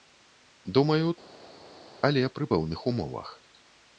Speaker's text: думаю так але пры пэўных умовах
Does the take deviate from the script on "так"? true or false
true